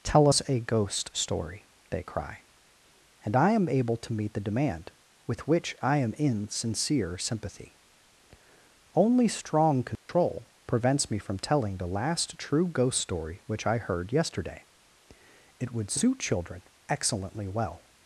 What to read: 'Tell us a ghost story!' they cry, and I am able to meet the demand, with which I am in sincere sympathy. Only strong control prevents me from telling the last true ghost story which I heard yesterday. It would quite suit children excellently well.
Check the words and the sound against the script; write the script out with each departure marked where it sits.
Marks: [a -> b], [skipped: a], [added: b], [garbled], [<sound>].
'Tell us a ghost story!' they cry, and I am able to meet the demand, with which I am in sincere sympathy. Only strong control [dropout] prevents me from telling the last true ghost story which I heard yesterday. It would [skipped: quite] suit children excellently well.